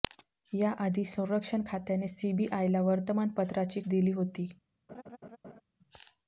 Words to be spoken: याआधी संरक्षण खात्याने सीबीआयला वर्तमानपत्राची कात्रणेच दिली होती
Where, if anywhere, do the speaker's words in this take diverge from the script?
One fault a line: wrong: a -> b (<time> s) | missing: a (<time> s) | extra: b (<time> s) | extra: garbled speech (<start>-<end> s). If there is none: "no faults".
missing: कात्रणेच (3.8 s)